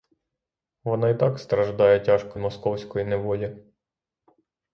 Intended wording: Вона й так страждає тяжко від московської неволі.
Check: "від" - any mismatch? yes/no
yes